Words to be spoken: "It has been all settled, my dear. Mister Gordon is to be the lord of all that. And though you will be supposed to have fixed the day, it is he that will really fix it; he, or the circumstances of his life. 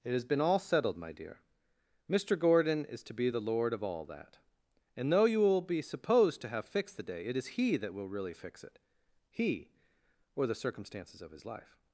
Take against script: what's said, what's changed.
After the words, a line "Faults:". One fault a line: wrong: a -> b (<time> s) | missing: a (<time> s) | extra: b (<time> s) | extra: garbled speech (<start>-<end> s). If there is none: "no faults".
"It has been all settled, my dear. Mister Gordon is to be the lord of all that. And though you will be supposed to have fixed the day, it is he that will really fix it; he, or the circumstances of his life.
Faults:
no faults